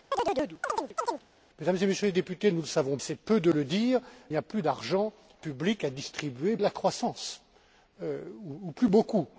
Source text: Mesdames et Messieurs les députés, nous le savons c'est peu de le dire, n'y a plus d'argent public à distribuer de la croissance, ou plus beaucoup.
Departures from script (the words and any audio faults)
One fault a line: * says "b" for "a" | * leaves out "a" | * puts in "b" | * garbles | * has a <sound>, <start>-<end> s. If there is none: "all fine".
* has a chirp, 0.1-1.2 s